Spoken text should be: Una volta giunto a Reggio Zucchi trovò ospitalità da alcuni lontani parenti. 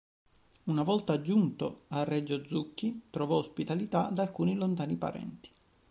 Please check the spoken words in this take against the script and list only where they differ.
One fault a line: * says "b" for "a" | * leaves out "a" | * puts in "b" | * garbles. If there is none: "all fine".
all fine